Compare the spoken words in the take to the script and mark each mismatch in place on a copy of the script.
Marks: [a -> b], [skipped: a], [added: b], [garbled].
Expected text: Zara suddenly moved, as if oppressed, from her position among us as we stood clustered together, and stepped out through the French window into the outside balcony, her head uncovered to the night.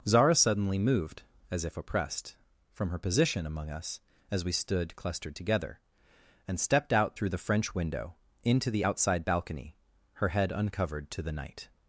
Zara suddenly moved, as if oppressed, from her position among us as we stood clustered together, and stepped out through the French window into the outside balcony, her head uncovered to the night.